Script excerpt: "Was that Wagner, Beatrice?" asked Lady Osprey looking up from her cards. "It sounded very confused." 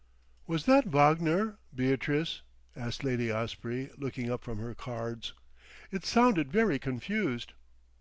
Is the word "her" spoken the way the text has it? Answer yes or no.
yes